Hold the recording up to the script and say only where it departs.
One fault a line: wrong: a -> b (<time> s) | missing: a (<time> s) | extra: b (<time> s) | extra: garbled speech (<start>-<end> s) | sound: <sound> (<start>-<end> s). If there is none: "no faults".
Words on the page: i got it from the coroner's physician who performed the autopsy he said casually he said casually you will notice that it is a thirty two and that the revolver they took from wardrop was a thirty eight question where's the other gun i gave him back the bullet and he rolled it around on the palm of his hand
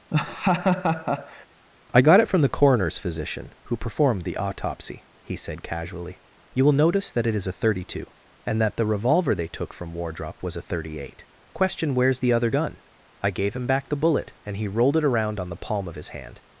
sound: laugh (0.1-1.5 s)
missing: he said casually (6.2 s)